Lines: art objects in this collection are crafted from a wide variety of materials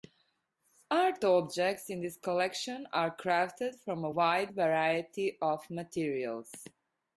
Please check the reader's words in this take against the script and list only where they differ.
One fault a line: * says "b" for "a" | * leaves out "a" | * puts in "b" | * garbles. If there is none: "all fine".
all fine